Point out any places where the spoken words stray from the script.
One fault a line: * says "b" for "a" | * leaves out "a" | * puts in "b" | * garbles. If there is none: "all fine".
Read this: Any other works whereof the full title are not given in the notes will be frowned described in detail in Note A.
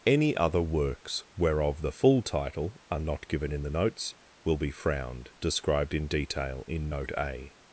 all fine